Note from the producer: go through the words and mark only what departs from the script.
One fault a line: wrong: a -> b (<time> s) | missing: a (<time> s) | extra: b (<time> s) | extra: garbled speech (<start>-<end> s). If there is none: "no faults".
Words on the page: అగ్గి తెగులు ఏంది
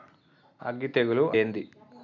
no faults